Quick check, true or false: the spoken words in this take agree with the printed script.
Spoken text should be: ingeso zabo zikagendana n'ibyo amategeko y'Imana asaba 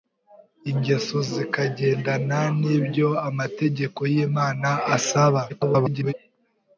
false